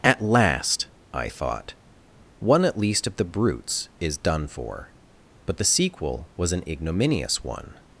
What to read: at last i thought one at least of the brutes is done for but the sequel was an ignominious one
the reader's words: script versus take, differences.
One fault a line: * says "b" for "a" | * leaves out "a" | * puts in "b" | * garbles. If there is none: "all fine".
all fine